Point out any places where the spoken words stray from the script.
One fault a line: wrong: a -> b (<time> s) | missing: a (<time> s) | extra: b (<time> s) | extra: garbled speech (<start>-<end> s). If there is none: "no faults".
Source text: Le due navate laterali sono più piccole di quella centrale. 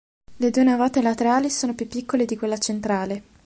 no faults